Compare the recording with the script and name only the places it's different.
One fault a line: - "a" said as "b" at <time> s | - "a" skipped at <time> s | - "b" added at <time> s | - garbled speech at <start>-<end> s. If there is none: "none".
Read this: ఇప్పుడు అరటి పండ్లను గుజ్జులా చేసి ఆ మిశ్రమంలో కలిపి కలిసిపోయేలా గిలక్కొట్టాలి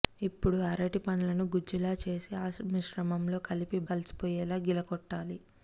none